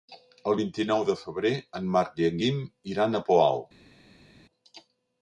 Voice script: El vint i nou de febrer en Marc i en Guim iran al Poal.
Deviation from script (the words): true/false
false